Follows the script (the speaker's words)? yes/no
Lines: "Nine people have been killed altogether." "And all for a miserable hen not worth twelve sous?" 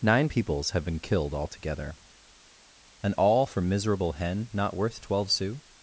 no